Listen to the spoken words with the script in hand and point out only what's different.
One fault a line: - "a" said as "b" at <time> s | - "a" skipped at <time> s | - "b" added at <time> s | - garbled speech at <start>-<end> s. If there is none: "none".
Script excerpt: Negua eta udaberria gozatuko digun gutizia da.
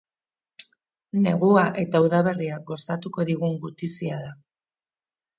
none